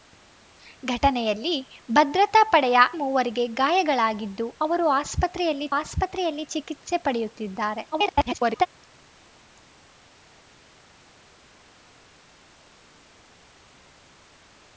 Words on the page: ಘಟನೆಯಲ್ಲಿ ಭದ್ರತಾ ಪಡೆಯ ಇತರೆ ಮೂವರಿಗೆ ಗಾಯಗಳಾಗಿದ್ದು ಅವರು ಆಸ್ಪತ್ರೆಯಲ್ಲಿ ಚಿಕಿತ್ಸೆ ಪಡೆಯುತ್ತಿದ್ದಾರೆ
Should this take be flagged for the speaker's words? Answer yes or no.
yes